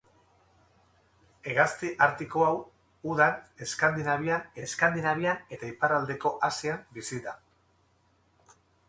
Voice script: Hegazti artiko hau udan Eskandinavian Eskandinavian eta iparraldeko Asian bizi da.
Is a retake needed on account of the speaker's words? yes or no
no